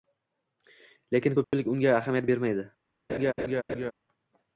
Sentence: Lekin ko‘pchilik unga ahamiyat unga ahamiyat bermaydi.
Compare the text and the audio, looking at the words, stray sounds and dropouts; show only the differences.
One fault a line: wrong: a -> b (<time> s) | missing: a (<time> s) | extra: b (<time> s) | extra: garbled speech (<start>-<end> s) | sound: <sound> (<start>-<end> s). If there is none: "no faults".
sound: dropout (1.4-1.5 s)
missing: unga ahamiyat (2.3 s)
sound: laugh (3.1-3.9 s)